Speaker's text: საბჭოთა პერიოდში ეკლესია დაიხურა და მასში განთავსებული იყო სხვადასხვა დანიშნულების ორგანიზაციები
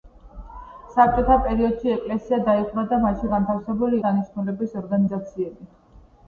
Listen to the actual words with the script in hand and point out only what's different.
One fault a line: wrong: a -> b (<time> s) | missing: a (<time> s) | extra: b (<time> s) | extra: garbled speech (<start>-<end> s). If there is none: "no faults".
missing: იყო სხვადასხვა (4.0 s)